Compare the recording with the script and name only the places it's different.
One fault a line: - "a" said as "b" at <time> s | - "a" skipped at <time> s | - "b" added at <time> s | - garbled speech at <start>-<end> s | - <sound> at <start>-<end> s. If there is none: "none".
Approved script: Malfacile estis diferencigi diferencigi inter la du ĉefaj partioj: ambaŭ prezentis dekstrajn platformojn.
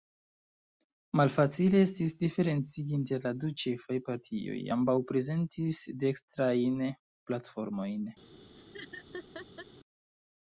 - "diferencigi" skipped at 3.0 s
- laugh at 8.5-9.7 s